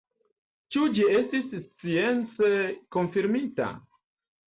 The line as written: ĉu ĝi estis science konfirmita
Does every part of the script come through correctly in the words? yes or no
yes